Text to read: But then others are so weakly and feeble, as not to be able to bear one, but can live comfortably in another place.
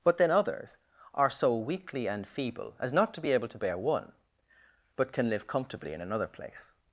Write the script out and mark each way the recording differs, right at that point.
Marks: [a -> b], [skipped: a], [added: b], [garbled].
But then others are so weakly and feeble, as not to be able to bear one, but can live comfortably in another place.